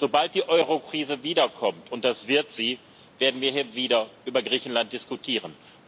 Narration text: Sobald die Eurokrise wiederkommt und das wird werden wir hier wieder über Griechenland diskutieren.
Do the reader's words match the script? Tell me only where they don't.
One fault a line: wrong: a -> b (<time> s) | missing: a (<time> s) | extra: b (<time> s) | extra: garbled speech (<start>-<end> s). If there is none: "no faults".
extra: sie (2.5 s)